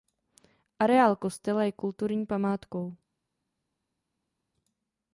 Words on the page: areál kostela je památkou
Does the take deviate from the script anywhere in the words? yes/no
yes